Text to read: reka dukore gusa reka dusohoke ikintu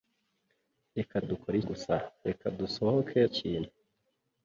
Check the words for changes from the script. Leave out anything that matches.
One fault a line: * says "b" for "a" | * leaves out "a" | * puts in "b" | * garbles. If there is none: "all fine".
all fine